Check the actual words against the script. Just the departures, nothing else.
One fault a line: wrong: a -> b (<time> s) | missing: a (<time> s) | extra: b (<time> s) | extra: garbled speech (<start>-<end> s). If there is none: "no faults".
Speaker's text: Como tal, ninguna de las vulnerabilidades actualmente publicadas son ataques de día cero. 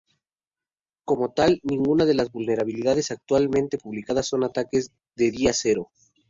no faults